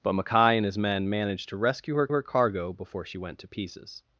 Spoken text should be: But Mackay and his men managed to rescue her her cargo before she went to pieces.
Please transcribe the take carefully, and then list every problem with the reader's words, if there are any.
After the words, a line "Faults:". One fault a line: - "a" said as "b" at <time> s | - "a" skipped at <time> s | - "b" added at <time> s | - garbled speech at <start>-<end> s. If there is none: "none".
But Mackay and his men managed to rescue her her cargo before she went to pieces.
Faults:
none